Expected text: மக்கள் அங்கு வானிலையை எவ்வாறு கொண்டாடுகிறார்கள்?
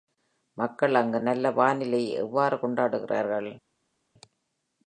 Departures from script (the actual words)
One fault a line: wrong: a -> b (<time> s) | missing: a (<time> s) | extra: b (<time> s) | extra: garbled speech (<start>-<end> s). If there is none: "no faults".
extra: நல்ல (1.2 s)